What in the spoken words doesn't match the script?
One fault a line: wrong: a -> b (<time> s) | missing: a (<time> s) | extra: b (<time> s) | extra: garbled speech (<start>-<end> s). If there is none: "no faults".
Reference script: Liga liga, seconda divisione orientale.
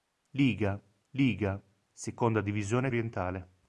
no faults